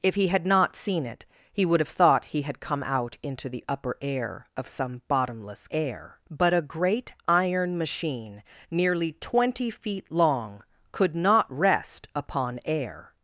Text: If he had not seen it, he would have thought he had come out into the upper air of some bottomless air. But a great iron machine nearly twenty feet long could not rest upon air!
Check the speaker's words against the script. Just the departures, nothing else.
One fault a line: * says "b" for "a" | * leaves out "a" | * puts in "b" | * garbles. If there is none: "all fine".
all fine